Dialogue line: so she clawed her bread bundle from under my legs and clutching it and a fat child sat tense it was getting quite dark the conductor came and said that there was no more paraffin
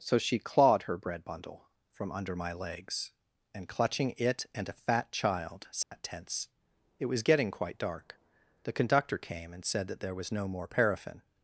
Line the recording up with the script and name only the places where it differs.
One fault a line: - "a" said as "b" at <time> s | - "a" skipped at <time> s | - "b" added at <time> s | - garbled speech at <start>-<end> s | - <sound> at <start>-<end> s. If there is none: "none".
- dropout at 5.8-5.9 s